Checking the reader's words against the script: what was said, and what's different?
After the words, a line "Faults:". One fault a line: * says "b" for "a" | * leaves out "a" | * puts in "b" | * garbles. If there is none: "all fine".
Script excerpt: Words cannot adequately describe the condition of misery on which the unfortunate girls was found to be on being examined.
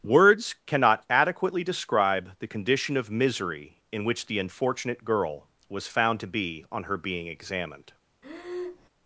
Words cannot adequately describe the condition of misery in which the unfortunate girl was found to be on her being examined.
Faults:
* says "in" for "on"
* says "girl" for "girls"
* puts in "her"